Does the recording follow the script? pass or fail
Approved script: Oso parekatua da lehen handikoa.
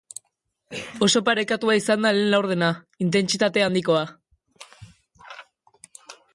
fail